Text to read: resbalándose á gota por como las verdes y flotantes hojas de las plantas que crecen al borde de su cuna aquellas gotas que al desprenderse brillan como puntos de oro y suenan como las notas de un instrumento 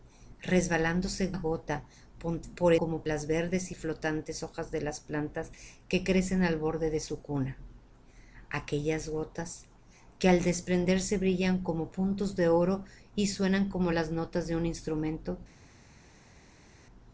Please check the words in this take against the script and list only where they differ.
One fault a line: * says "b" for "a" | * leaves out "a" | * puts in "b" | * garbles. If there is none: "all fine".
all fine